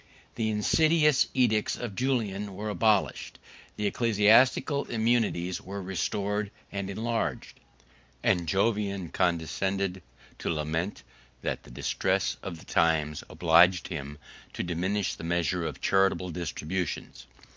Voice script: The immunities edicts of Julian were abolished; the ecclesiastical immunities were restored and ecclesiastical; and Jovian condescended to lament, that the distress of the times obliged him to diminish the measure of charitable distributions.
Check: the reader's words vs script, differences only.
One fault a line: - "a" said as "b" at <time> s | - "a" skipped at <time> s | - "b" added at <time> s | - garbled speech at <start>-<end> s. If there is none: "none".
- "immunities" said as "insidious" at 0.5 s
- "ecclesiastical" said as "enlarged" at 6.9 s